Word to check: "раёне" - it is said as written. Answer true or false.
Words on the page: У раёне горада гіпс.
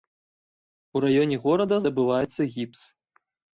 true